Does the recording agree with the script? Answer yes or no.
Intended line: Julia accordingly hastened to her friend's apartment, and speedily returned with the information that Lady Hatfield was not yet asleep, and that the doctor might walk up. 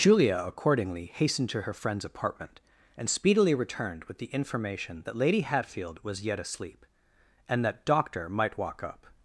no